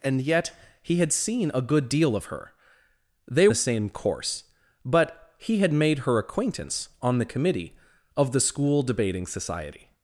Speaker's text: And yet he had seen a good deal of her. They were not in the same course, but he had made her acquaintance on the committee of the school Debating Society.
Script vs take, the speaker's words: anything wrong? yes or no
yes